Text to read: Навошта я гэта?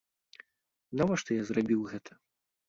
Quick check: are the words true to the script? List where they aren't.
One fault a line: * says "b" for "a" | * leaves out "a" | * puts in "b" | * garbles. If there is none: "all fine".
* puts in "зрабіў"